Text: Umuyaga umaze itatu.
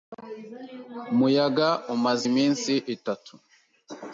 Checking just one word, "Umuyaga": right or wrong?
right